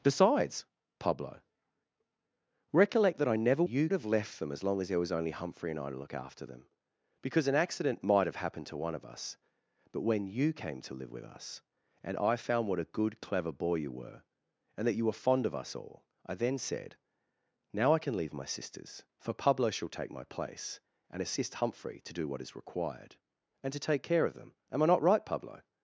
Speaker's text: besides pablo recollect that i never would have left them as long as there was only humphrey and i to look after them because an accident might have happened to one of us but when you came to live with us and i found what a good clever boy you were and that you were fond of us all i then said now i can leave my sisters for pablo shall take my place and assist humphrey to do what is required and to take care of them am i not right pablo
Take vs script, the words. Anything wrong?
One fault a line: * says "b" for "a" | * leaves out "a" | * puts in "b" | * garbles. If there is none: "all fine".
* says "you" for "would"